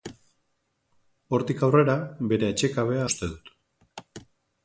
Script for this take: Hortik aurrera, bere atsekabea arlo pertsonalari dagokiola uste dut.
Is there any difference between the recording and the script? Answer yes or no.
yes